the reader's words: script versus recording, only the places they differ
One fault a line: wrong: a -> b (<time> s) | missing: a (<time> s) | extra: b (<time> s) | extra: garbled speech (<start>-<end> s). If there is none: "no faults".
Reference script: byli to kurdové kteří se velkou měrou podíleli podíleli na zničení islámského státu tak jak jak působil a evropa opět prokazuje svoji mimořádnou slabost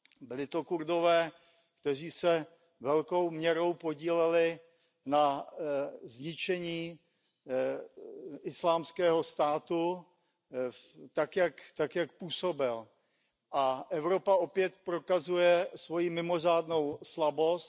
missing: podíleli (4.6 s)
missing: jak (12.1 s)